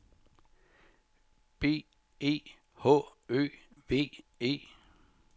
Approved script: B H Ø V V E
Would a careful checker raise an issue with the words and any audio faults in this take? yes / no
yes